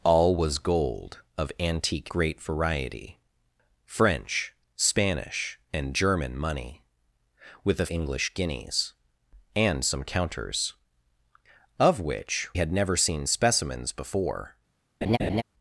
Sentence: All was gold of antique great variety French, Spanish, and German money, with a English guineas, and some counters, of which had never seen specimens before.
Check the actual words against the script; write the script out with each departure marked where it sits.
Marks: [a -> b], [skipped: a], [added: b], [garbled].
All was gold of antique great variety French, Spanish, and German money, with a English guineas, and some counters, of which had never seen specimens before.